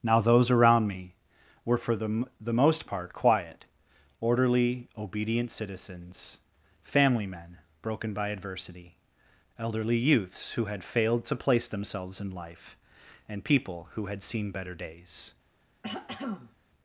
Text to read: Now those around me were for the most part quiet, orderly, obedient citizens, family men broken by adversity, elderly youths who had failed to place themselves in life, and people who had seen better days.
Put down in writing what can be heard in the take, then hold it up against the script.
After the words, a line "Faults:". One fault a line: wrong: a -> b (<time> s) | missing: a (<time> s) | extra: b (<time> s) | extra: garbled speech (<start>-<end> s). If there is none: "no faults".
Now those around me were for the the most part quiet, orderly, obedient citizens, family men broken by adversity, elderly youths who had failed to place themselves in life, and people who had seen better days.
Faults:
extra: the (2.4 s)